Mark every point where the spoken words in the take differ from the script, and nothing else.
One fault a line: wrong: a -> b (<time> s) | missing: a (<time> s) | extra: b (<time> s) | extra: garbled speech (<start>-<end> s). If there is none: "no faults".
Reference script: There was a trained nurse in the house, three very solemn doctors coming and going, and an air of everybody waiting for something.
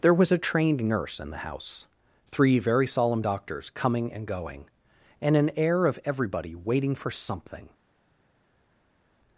no faults